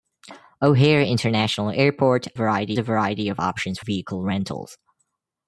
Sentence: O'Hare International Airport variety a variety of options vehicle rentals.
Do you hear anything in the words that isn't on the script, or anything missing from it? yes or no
no